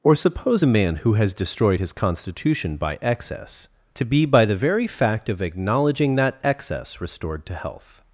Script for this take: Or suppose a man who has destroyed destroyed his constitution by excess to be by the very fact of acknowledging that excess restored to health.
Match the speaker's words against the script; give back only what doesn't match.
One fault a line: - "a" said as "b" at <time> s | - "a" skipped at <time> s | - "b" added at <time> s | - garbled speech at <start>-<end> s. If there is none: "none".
- "destroyed" skipped at 1.8 s